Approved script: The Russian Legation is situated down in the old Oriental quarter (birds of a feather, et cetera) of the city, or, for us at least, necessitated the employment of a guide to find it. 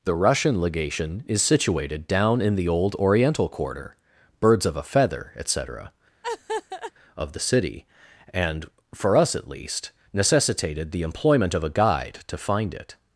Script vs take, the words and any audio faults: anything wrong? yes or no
yes